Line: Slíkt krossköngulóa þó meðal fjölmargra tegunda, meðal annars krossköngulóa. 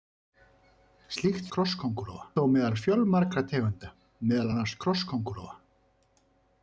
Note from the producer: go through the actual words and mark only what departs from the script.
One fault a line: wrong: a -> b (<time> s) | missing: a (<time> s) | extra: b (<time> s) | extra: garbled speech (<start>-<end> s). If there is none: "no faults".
no faults